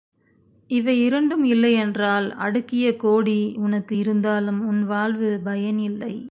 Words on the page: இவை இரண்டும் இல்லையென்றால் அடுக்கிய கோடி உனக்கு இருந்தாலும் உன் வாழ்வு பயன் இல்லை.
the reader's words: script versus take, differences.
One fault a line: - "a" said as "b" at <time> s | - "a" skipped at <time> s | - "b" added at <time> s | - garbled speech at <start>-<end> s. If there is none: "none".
none